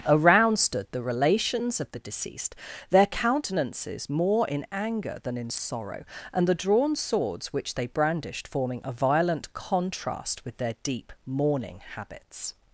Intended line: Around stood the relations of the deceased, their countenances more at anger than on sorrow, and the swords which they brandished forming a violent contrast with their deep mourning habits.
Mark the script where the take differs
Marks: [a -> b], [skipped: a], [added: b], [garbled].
Around stood the relations of the deceased, their countenances more [at -> in] anger than [on -> in] sorrow, and the [added: drawn] swords which they brandished forming a violent contrast with their deep mourning habits.